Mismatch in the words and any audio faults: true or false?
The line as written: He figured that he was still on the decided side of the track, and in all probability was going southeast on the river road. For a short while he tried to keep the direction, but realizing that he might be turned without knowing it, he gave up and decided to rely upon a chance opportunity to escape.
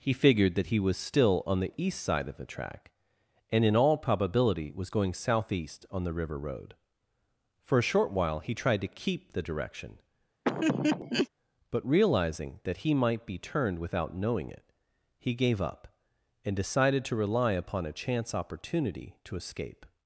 true